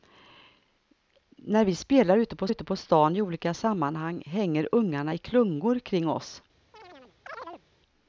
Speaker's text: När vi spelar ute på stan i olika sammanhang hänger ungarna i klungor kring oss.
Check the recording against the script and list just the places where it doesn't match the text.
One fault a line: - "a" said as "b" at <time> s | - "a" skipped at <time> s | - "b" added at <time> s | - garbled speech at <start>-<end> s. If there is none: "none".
- "ute på" added at 2.5 s